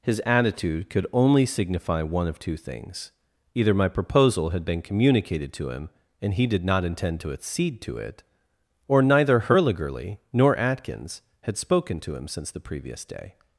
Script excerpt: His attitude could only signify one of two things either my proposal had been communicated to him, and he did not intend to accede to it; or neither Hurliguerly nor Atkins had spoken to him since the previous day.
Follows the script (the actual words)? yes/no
yes